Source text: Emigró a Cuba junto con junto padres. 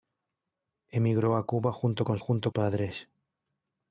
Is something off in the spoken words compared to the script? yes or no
no